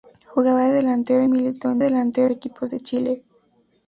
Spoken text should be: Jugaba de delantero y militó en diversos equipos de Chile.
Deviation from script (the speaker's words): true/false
true